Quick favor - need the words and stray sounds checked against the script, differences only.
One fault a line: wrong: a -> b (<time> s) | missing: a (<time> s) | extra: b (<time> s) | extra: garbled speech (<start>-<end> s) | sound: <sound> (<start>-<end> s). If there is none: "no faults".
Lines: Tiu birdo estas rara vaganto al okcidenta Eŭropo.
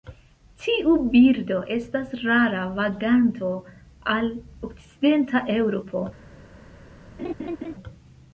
sound: laugh (7.2-7.7 s)